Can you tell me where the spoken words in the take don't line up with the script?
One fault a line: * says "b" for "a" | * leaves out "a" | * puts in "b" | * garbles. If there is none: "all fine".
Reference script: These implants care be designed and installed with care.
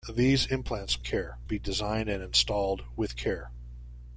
all fine